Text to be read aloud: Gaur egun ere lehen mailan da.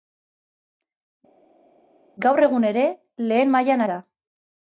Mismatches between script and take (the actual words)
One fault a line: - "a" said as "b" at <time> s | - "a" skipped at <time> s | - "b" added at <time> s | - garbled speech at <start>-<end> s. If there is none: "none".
none